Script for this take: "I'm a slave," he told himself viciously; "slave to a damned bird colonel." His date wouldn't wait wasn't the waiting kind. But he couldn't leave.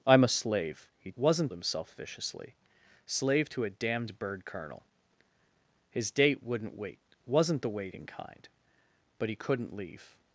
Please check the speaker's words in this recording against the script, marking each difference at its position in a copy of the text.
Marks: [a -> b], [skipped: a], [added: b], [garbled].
"I'm a slave," he [told -> wasn't] himself viciously; "slave to a damned bird colonel." His date wouldn't wait wasn't the waiting kind. But he couldn't leave.